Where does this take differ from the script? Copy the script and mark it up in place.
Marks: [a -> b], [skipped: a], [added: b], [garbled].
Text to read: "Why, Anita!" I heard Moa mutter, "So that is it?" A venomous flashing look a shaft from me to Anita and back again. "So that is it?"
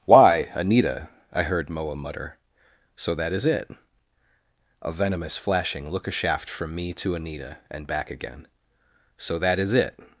"Why, Anita!" I heard Moa mutter, "So that is it?" A venomous flashing look a shaft from me to Anita and back again. "So that is it?"